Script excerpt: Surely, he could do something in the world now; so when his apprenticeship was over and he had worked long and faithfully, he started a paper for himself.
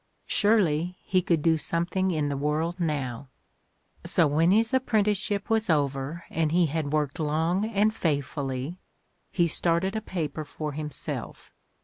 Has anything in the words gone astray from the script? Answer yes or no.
no